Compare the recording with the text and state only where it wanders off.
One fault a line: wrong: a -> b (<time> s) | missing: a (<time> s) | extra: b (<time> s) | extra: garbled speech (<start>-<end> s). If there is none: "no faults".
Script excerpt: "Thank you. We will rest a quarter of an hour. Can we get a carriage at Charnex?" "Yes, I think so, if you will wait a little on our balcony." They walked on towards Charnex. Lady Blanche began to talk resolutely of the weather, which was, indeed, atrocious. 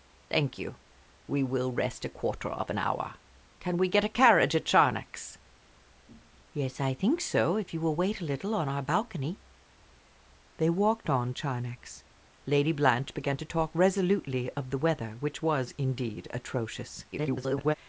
missing: towards (11.3 s)
extra: garbled speech (17.1-17.8 s)